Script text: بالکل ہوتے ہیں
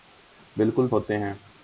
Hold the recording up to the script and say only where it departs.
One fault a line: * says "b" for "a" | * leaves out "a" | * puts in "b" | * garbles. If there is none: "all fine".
all fine